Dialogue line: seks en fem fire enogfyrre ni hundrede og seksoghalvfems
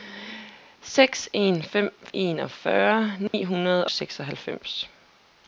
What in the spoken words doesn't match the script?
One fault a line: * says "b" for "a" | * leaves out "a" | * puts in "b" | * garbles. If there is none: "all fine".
* leaves out "fire"
* leaves out "og"